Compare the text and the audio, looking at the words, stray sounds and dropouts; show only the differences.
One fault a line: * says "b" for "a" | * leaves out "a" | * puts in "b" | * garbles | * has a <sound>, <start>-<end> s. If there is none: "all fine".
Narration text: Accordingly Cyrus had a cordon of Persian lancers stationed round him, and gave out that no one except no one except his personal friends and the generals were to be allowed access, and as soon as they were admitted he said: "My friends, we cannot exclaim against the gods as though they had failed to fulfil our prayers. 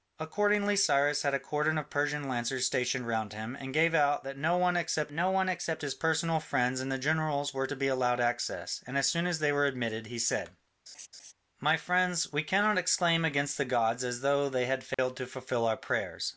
* has a laugh, 10.9-11.3 s
* has a dropout, 14.9-15.0 s